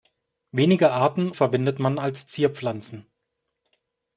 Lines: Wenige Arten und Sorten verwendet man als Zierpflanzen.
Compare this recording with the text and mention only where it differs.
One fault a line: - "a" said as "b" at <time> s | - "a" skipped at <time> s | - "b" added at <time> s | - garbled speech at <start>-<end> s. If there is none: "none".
- "und Sorten" skipped at 1.3 s